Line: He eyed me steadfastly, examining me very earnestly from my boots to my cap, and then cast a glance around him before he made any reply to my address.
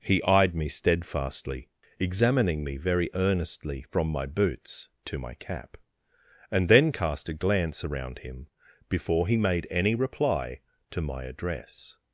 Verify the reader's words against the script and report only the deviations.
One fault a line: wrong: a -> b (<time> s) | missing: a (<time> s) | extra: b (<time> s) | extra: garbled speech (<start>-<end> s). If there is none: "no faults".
no faults